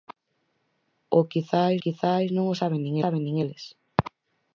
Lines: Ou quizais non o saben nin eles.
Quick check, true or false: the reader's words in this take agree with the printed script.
false